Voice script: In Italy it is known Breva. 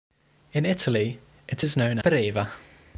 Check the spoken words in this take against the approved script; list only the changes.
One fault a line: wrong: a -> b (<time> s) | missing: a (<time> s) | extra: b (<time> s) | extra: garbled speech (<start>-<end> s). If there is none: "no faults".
no faults